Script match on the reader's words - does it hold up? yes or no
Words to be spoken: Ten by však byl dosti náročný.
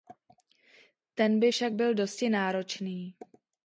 yes